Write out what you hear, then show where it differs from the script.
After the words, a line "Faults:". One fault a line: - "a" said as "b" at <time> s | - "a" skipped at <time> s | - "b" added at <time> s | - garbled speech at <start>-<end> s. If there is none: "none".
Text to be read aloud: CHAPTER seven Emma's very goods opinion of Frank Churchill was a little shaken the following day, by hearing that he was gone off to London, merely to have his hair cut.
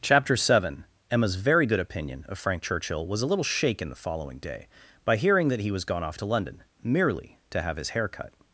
CHAPTER seven Emma's very good opinion of Frank Churchill was a little shaken the following day, by hearing that he was gone off to London, merely to have his hair cut.
Faults:
- "goods" said as "good" at 1.7 s